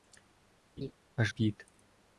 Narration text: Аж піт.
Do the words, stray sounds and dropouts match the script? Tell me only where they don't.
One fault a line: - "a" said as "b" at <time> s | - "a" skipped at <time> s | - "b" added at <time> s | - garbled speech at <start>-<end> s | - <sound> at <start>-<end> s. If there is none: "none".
- laugh at 0.8-0.9 s